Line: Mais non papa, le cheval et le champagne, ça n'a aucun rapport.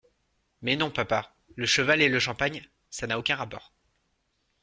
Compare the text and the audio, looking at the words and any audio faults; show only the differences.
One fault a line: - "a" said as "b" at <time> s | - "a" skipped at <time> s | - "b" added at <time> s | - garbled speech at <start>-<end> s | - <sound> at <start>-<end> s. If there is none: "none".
none